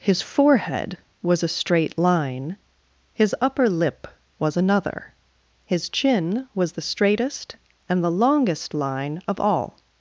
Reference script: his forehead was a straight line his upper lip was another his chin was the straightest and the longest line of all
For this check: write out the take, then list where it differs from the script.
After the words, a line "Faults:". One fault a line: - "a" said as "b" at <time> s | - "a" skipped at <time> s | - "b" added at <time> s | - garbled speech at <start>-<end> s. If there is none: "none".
his forehead was a straight line his upper lip was another his chin was the straightest and the longest line of all
Faults:
none